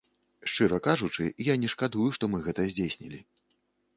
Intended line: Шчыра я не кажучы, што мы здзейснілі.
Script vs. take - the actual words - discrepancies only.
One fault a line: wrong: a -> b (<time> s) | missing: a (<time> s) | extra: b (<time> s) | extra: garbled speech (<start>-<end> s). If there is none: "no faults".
extra: кажучы (0.9 s)
wrong: кажучы -> шкадую (1.8 s)
extra: гэта (2.5 s)